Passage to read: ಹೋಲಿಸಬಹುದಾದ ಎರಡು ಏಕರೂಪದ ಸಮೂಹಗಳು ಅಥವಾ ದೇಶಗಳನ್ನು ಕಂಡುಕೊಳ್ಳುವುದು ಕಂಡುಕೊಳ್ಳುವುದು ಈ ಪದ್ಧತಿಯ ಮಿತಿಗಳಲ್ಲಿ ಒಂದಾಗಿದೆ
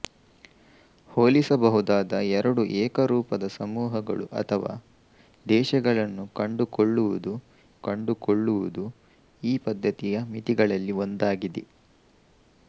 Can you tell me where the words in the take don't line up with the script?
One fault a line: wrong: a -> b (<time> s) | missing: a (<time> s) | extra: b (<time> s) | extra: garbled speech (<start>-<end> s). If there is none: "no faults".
no faults